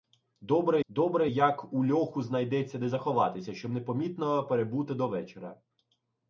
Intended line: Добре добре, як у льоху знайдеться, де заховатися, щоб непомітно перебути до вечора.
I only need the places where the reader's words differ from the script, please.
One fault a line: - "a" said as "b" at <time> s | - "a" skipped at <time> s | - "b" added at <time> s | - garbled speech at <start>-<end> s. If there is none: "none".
none